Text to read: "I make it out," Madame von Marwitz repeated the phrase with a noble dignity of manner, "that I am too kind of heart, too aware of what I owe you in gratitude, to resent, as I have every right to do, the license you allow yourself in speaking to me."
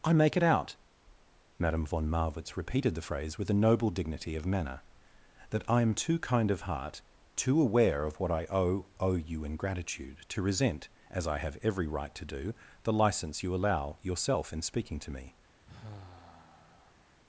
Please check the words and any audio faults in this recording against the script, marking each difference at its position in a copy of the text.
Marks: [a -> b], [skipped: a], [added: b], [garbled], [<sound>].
"I make it out," Madame von Marwitz repeated the phrase with a noble dignity of manner, "that I am too kind of heart, too aware of what I owe [added: owe] you in gratitude, to resent, as I have every right to do, the license you allow yourself in speaking to me." [sigh]